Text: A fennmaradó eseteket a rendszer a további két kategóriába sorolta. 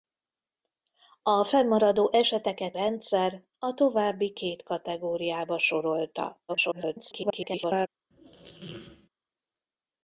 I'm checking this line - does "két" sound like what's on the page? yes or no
yes